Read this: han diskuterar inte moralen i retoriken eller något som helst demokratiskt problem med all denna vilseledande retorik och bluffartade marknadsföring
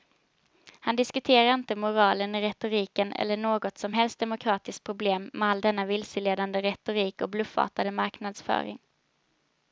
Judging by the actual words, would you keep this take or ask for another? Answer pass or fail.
pass